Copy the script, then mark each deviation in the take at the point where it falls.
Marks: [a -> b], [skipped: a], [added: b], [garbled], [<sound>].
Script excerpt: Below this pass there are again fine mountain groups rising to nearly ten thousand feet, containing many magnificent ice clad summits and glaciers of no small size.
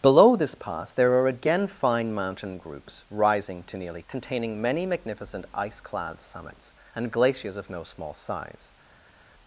Below this pass there are again fine mountain groups rising to nearly [skipped: ten thousand feet,] containing many magnificent ice clad summits and glaciers of no small size.